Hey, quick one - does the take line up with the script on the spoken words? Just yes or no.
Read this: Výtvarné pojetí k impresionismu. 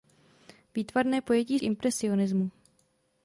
yes